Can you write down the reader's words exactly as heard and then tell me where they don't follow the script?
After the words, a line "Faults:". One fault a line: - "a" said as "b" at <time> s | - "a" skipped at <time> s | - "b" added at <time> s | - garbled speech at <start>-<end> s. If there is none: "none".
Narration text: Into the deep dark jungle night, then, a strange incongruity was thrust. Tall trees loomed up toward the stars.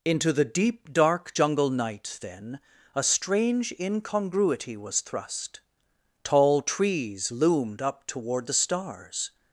Into the deep dark jungle night, then, a strange incongruity was thrust. Tall trees loomed up toward the stars.
Faults:
none